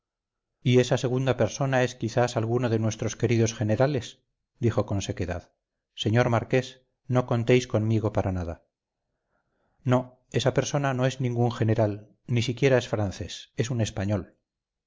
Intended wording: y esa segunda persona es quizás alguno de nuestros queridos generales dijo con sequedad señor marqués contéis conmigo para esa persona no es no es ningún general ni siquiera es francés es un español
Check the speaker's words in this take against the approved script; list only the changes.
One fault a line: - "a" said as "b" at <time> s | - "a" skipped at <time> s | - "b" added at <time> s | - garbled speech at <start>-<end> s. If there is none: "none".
- "no" added at 7.1 s
- "nada no" added at 8.3 s
- "no es" skipped at 11.2 s